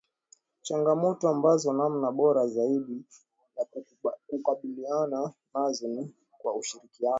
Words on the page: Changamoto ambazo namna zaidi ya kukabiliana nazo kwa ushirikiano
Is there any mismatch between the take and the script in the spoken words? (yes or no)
yes